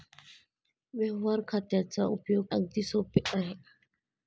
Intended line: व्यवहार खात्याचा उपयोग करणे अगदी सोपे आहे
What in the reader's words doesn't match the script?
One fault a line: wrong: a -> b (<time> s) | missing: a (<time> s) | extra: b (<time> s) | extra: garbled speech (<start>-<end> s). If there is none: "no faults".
missing: करणे (2.5 s)